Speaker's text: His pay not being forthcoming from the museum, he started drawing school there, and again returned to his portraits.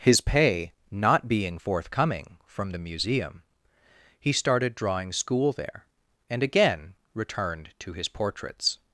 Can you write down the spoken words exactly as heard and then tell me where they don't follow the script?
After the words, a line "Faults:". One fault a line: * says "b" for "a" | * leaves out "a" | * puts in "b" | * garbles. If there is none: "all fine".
His pay not being forthcoming from the museum, he started drawing school there, and again returned to his portraits.
Faults:
all fine